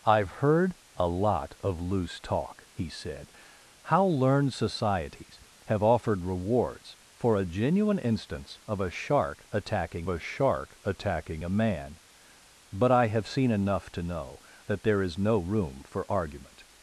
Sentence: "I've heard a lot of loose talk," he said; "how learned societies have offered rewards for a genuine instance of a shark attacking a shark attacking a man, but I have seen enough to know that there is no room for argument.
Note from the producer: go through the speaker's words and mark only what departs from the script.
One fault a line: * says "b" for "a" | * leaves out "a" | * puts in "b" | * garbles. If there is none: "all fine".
all fine